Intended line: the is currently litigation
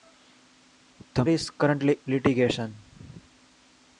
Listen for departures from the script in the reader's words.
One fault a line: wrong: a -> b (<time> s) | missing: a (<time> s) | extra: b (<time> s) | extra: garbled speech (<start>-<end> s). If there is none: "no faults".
no faults